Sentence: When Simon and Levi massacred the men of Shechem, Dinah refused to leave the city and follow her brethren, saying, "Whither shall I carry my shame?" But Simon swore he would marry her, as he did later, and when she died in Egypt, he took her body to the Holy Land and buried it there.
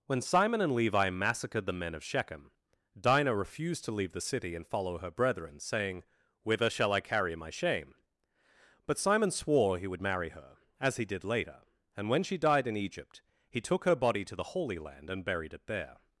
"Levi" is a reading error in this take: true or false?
false